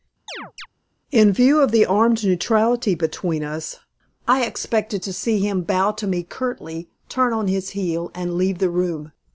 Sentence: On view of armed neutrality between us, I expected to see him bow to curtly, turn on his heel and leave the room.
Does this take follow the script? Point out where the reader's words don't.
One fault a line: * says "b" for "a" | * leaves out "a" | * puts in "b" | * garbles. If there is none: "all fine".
* says "In" for "On"
* puts in "the"
* puts in "me"